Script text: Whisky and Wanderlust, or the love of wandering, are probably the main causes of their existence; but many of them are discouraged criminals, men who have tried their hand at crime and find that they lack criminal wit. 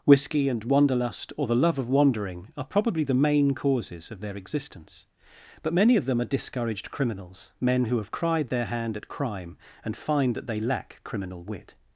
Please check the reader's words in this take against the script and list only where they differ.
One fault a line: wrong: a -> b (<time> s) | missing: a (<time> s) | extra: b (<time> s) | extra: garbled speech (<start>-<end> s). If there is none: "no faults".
wrong: tried -> cried (8.1 s)